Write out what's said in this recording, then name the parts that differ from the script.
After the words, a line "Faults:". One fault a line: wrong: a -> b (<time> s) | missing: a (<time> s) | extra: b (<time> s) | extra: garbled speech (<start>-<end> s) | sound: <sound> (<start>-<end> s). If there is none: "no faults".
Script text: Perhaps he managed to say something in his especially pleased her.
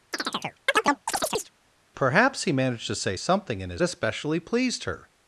Perhaps he managed to say something in his especially pleased her.
Faults:
sound: chirp (0.1-1.5 s)